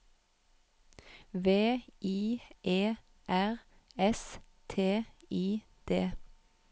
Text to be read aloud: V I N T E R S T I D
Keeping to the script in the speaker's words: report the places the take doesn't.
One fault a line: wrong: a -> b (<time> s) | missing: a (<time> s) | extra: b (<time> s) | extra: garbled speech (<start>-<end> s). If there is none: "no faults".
missing: N T (2.4 s)